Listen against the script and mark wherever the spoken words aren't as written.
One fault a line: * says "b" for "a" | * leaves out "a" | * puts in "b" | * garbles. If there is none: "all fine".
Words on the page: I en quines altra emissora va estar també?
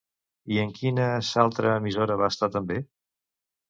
all fine